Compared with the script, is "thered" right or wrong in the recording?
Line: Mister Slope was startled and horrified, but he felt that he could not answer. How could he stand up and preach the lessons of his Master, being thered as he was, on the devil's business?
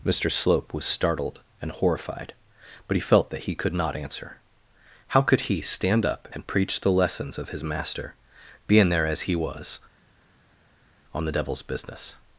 wrong